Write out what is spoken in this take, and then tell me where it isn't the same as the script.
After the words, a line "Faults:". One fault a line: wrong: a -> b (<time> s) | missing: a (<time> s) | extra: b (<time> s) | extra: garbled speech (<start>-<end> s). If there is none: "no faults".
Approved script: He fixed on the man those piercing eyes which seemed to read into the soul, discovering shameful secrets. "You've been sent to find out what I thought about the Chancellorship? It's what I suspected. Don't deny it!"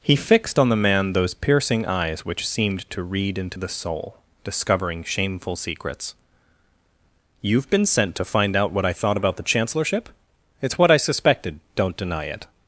He fixed on the man those piercing eyes which seemed to read into the soul, discovering shameful secrets. "You've been sent to find out what I thought about the Chancellorship? It's what I suspected. Don't deny it!"
Faults:
no faults